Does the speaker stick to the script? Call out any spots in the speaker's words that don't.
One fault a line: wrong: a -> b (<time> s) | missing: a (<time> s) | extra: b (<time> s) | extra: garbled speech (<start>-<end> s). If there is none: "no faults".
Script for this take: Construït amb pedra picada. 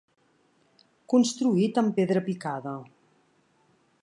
no faults